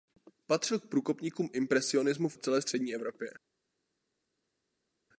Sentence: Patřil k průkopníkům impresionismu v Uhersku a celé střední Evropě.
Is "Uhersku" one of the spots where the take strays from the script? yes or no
yes